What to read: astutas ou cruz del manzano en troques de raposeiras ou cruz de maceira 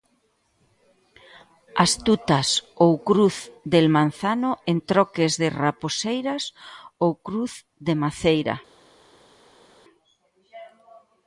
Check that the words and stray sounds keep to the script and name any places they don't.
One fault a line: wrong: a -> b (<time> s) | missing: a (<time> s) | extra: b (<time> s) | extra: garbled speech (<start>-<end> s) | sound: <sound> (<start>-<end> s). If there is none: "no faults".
no faults